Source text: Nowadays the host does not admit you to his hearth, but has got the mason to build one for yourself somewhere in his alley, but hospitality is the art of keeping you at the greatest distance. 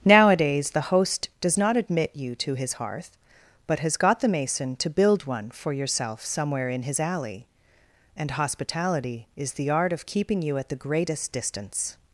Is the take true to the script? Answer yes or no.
no